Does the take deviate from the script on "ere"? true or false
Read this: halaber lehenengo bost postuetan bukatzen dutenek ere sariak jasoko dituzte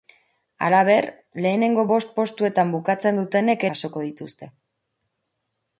true